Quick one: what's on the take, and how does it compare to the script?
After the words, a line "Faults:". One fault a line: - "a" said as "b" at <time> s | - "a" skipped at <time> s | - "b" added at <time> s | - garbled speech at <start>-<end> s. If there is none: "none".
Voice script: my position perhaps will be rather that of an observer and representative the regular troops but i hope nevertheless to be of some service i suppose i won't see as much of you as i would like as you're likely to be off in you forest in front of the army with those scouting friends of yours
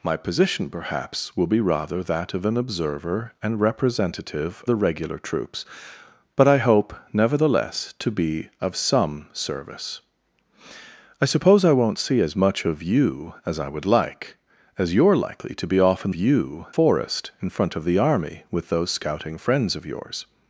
my position perhaps will be rather that of an observer and representative the regular troops but i hope nevertheless to be of some service i suppose i won't see as much of you as i would like as you're likely to be off in you forest in front of the army with those scouting friends of yours
Faults:
none